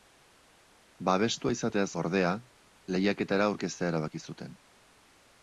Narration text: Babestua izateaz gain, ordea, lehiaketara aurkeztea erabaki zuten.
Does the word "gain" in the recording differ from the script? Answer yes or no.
yes